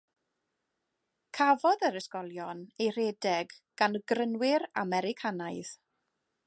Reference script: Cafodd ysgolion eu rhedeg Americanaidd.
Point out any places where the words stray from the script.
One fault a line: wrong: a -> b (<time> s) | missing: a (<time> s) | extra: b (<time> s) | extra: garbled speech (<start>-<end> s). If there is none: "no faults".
extra: yr (1.9 s)
extra: gan Grynwyr (3.8 s)